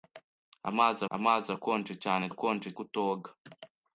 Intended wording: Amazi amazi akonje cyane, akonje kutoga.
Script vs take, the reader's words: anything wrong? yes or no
no